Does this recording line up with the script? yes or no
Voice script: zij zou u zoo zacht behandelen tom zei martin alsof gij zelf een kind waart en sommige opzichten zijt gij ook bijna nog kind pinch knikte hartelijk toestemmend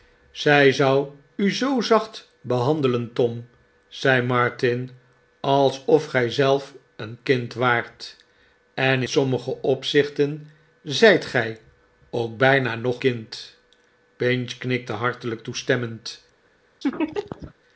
yes